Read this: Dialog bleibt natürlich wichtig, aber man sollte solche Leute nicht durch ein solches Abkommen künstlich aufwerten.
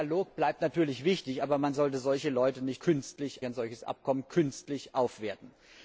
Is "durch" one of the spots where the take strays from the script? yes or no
yes